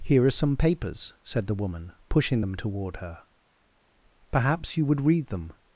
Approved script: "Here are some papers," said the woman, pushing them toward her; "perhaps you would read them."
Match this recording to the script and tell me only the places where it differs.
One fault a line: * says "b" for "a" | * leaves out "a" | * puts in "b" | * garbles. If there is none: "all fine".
all fine